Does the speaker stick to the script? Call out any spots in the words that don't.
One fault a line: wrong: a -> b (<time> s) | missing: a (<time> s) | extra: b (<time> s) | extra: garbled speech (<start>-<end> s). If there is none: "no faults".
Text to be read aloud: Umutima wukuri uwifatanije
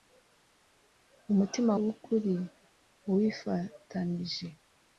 no faults